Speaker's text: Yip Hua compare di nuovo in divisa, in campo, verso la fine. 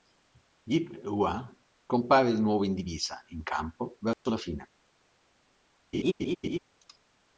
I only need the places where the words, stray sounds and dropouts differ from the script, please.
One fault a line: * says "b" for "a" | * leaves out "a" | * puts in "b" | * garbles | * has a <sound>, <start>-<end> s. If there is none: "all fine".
* has a dropout, 4.1-4.3 s
* has a laugh, 5.9-6.6 s